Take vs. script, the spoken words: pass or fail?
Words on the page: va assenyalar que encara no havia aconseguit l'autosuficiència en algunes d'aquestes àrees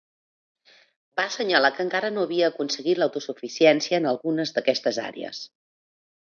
pass